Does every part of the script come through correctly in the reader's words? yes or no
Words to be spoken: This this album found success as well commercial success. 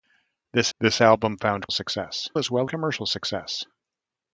yes